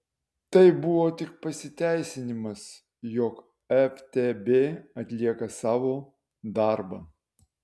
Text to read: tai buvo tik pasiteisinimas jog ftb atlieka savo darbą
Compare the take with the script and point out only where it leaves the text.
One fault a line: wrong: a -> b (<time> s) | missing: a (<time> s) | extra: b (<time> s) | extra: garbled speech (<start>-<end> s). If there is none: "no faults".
no faults